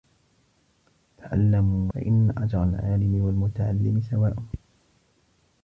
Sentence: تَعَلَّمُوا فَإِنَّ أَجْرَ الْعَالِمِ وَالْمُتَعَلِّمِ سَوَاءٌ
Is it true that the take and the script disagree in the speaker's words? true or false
false